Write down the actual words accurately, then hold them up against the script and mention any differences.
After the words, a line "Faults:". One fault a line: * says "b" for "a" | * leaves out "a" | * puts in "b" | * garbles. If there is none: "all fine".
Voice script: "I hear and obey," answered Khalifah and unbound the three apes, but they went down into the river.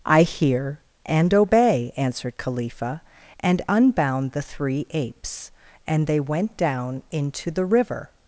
"I hear and obey," answered Khalifah and unbound the three apes, and they went down into the river.
Faults:
* says "and" for "but"